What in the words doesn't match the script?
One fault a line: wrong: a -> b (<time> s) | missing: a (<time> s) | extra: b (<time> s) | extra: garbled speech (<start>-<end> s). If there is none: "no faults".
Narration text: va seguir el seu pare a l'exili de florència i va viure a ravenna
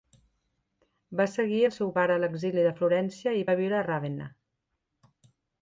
no faults